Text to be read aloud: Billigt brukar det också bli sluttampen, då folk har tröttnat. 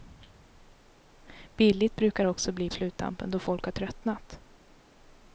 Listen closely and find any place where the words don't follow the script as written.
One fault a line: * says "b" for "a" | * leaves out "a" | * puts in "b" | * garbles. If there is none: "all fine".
all fine